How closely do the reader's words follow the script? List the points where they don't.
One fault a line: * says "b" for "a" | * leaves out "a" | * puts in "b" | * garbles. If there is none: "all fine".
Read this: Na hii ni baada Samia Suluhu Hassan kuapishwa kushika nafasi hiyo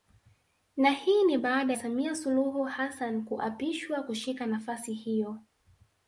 all fine